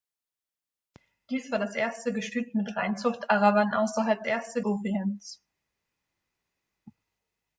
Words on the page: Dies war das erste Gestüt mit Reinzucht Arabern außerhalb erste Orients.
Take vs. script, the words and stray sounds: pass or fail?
pass